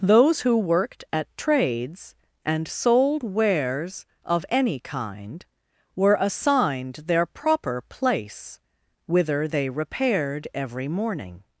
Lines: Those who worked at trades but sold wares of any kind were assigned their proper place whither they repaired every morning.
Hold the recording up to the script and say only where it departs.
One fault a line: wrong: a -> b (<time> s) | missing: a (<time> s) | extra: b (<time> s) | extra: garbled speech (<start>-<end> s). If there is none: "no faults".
wrong: but -> and (2.4 s)